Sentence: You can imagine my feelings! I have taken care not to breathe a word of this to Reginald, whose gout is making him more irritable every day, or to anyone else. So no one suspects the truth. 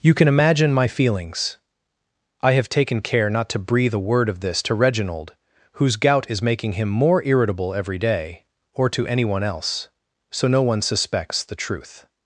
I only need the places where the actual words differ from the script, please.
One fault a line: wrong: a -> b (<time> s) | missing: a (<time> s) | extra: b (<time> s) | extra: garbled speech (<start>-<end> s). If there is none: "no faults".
no faults